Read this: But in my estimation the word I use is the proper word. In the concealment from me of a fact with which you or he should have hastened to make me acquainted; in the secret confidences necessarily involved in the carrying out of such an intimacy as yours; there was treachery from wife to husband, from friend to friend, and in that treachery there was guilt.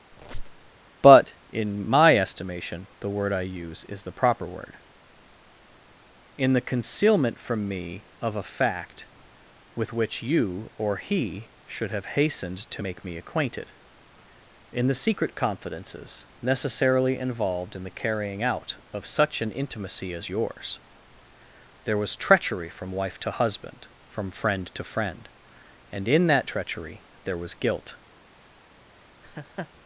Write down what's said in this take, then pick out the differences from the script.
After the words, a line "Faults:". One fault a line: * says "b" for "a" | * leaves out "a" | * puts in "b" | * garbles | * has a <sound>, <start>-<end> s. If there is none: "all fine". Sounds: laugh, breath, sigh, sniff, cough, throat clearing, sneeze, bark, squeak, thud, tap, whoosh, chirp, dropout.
But in my estimation the word I use is the proper word. In the concealment from me of a fact with which you or he should have hastened to make me acquainted; in the secret confidences necessarily involved in the carrying out of such an intimacy as yours; there was treachery from wife to husband, from friend to friend, and in that treachery there was guilt.
Faults:
* has a squeak, 0.1-0.7 s
* has a laugh, 29.2-29.7 s